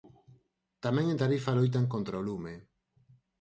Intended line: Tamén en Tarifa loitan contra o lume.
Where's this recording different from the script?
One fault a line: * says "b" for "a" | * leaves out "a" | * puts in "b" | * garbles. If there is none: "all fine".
all fine